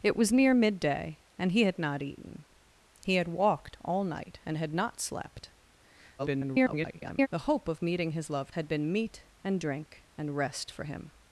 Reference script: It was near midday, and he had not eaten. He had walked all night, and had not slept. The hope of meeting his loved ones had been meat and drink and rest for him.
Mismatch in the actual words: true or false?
true